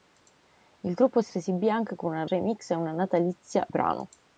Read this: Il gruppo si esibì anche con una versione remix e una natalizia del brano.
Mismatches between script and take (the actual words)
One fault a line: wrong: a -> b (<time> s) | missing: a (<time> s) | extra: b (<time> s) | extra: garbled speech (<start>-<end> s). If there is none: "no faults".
extra: si (1.3 s)
missing: versione (2.3 s)
missing: del (3.6 s)